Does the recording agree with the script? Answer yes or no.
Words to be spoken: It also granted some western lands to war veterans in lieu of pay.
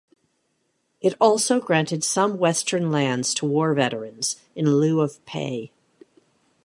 yes